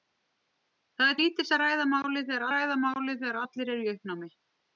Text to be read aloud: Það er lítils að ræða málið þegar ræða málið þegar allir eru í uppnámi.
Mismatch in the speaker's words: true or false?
false